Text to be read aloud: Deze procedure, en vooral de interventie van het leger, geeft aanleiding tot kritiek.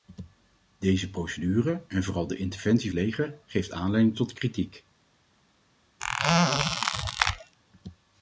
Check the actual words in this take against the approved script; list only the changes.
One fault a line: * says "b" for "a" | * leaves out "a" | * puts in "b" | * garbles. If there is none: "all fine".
* leaves out "van het"